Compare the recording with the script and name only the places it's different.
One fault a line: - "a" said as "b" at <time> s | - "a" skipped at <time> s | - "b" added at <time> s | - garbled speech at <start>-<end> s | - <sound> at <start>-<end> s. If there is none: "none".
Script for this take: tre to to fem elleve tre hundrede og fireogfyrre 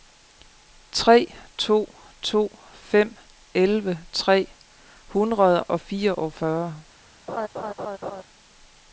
- laugh at 7.3-8.2 s